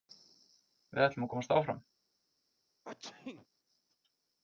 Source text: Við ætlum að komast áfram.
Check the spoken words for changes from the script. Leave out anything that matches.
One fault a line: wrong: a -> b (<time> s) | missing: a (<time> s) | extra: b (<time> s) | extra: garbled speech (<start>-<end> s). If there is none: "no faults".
no faults